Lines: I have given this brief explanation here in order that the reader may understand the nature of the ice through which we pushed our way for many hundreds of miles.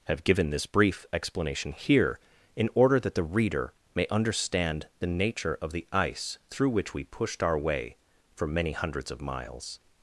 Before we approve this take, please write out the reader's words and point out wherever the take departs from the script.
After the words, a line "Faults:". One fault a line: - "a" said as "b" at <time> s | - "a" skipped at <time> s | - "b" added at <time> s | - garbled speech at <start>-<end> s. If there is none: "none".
have given this brief explanation here in order that the reader may understand the nature of the ice through which we pushed our way for many hundreds of miles.
Faults:
- "I" skipped at 0.1 s